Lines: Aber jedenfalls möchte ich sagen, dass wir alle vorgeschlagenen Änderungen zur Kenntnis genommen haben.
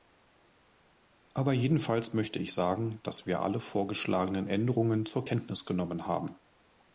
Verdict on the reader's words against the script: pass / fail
pass